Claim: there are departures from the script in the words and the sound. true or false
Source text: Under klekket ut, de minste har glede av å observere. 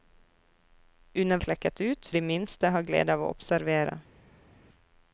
false